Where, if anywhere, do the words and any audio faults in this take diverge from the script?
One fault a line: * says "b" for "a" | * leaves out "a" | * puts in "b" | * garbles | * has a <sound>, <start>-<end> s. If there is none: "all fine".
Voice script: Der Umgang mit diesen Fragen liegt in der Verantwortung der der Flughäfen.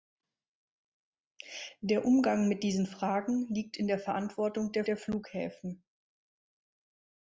all fine